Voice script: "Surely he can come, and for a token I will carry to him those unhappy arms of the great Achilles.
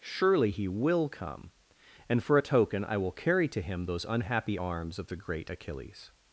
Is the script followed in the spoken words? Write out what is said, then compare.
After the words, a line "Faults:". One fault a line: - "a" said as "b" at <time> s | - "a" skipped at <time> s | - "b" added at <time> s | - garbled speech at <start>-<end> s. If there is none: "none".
"Surely he will come, and for a token I will carry to him those unhappy arms of the great Achilles.
Faults:
- "can" said as "will" at 0.7 s